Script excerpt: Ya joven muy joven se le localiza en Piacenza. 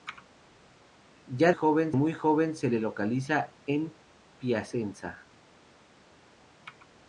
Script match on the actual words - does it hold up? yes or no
yes